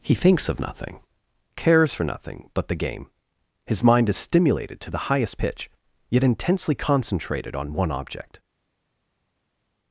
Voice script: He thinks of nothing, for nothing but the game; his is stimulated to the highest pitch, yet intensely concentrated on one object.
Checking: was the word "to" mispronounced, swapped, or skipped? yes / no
no